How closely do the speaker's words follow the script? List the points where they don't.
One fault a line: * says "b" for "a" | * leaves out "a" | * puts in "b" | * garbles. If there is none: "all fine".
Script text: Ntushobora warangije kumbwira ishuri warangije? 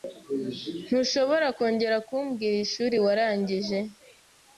* says "kongera" for "warangije"